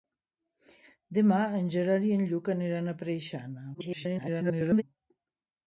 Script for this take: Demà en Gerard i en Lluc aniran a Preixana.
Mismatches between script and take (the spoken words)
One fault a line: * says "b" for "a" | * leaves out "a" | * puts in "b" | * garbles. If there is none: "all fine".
* garbles